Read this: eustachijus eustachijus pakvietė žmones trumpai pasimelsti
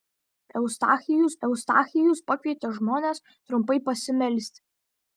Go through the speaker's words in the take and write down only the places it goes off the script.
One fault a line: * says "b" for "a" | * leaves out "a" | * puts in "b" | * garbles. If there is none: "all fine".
all fine